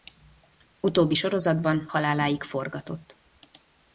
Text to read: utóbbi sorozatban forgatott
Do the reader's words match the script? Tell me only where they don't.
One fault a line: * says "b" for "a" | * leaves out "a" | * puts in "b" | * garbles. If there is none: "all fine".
* puts in "haláláig"